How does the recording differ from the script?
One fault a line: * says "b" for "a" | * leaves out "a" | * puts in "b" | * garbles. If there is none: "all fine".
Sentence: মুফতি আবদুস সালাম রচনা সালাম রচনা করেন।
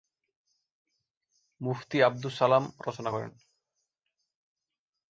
* leaves out "সালাম রচনা"